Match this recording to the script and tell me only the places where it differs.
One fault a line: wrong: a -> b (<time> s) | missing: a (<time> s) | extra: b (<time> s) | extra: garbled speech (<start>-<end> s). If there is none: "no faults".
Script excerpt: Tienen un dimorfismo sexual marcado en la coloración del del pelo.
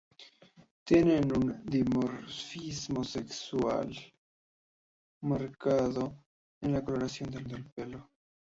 no faults